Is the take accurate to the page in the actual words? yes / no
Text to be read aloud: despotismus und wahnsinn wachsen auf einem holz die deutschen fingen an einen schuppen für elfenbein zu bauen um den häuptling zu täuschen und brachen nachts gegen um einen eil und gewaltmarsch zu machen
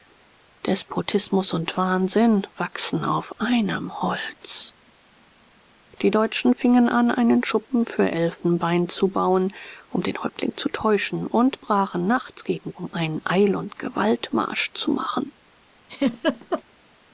yes